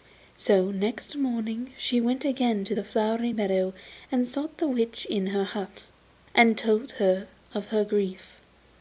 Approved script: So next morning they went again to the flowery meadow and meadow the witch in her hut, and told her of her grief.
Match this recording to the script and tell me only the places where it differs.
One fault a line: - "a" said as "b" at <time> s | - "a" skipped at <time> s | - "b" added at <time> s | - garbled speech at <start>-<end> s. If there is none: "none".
- "they" said as "she" at 1.8 s
- "meadow" said as "sought" at 4.3 s